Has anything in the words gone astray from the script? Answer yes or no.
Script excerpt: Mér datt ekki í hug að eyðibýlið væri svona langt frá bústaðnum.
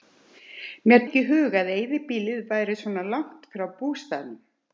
yes